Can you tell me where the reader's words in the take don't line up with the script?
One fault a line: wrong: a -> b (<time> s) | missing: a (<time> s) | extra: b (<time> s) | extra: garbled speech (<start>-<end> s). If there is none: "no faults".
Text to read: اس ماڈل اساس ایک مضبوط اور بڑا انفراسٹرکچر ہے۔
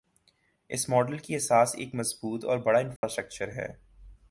extra: کی (1.2 s)